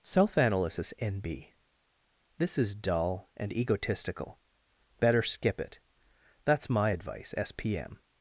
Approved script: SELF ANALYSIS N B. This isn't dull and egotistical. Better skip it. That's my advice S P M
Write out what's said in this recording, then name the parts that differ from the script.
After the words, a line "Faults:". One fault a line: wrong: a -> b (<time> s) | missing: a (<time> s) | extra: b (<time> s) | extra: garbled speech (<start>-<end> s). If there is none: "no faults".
SELF ANALYSIS N B. This is dull and egotistical. Better skip it. That's my advice S P M
Faults:
wrong: isn't -> is (2.6 s)